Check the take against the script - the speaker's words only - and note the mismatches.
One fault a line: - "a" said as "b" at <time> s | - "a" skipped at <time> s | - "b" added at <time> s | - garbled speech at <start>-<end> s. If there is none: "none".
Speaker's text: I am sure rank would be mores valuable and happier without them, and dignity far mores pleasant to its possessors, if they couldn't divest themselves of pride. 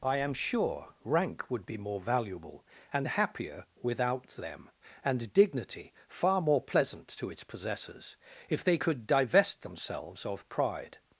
- "mores" said as "more" at 1.8 s
- "mores" said as "more" at 6.4 s
- "couldn't" said as "could" at 8.8 s